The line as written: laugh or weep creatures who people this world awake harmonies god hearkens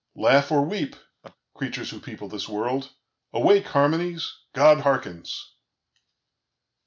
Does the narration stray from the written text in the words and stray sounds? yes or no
yes